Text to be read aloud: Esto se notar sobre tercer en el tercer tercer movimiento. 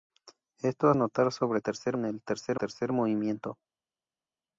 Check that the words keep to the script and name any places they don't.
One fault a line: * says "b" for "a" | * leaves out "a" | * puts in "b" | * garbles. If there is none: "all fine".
all fine